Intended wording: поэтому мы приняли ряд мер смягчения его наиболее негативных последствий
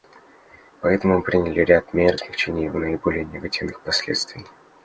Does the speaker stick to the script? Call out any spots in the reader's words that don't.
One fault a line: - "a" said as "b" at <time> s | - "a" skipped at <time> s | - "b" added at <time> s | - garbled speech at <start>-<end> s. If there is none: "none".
none